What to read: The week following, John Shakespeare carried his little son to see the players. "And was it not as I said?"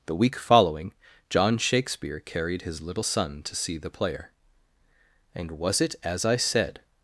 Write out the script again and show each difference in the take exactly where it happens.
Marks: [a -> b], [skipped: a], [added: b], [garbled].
The week following, John Shakespeare carried his little son to see the [players. -> player] "And was it [skipped: not] as I said?"